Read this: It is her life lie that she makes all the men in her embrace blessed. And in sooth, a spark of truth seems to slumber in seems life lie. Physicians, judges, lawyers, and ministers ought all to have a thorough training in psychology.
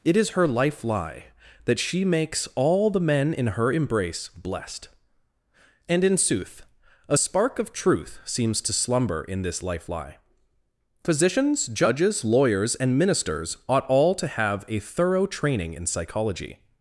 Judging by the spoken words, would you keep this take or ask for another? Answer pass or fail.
fail